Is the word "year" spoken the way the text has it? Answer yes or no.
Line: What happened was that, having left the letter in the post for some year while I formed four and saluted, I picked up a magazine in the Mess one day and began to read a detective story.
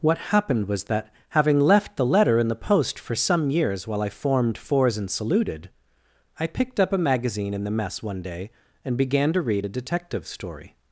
no